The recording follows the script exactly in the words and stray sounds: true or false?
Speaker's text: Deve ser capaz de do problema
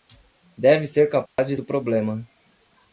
false